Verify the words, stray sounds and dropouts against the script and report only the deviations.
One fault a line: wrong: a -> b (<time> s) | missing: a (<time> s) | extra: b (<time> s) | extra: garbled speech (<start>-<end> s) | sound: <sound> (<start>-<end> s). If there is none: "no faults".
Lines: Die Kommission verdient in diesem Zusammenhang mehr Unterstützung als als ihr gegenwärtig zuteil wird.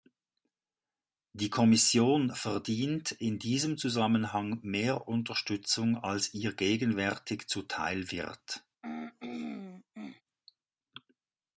missing: als (6.3 s)
sound: throat clearing (8.8-10.2 s)